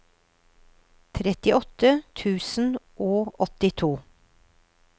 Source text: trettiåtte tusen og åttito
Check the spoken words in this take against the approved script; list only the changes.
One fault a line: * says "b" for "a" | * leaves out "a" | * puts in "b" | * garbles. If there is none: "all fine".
all fine